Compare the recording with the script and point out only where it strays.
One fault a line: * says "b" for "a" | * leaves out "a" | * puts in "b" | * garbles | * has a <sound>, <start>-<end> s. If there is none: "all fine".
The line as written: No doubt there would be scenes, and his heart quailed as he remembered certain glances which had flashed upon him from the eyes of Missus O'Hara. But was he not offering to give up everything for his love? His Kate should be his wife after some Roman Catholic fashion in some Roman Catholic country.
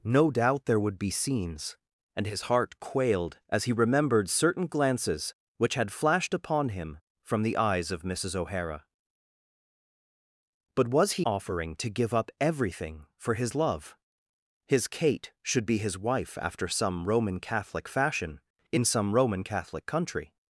* leaves out "not"